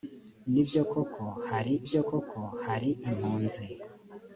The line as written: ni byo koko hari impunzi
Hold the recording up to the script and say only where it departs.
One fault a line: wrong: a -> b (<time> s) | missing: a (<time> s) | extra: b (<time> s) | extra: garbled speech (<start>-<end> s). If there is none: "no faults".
extra: byo koko hari (1.9 s)